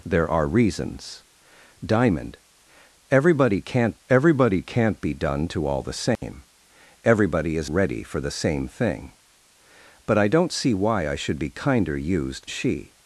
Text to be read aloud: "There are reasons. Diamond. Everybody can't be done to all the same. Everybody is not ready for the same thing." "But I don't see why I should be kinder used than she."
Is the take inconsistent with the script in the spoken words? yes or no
yes